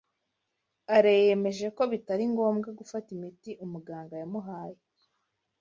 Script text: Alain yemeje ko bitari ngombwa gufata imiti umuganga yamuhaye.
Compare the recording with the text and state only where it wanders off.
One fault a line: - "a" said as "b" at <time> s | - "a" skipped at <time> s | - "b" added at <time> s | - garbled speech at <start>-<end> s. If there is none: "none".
none